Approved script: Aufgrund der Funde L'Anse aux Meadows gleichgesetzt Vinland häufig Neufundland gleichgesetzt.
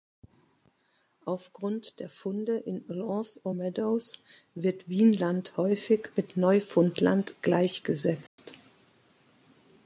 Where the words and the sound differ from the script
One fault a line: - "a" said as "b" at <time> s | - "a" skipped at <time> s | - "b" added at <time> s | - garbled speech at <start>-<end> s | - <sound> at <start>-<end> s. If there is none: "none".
- "in" added at 2.6 s
- "gleichgesetzt" said as "wird" at 4.5 s
- "mit" added at 6.2 s
- dropout at 8.3-8.4 s